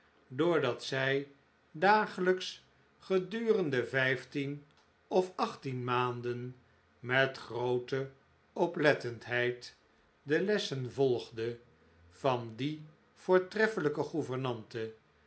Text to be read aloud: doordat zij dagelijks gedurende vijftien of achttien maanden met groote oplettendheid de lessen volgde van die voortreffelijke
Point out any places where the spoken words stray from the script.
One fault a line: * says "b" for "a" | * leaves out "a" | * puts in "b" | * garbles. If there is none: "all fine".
all fine